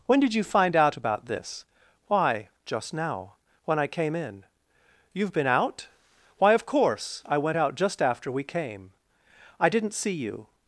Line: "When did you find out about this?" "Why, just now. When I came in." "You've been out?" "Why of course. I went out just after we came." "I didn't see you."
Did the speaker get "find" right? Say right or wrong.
right